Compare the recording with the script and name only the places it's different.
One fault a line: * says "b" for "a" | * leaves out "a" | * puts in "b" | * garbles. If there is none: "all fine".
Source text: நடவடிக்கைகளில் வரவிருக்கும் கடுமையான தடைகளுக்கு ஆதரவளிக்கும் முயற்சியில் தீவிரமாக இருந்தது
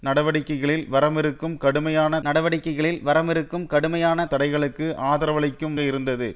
* puts in "நடவடிக்கைகளில் வரவிருக்கும் கடுமையான"
* leaves out "முயற்சியில் தீவிரமாக"